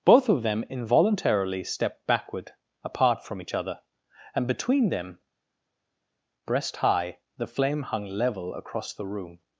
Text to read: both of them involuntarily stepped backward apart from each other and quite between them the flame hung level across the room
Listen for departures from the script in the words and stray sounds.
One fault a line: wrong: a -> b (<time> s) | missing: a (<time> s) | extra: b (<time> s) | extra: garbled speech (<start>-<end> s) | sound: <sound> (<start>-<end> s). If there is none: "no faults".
missing: quite (4.5 s)
extra: breast high (6.5 s)